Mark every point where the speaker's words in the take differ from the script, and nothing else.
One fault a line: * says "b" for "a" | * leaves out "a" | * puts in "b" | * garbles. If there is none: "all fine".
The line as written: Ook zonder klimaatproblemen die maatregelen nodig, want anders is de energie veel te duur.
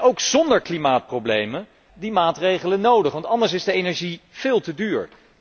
all fine